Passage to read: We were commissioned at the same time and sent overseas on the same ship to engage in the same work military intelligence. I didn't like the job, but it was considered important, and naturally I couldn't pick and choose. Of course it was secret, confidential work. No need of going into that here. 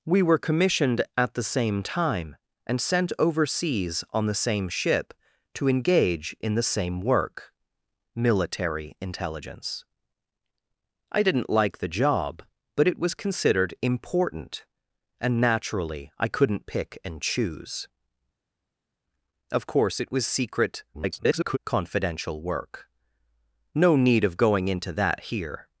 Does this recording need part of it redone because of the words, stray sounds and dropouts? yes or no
yes